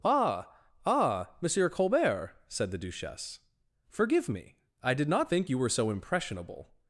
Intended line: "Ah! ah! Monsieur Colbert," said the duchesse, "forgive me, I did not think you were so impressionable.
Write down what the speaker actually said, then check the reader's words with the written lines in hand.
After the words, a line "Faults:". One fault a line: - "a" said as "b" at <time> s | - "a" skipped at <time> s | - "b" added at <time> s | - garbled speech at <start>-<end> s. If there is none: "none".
"Ah! ah! Monsieur Colbert," said the duchesse, "forgive me, I did not think you were so impressionable.
Faults:
none